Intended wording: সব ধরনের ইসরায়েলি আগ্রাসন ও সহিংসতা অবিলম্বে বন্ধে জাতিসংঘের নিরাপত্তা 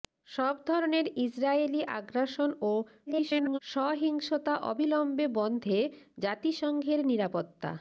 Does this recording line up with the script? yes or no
no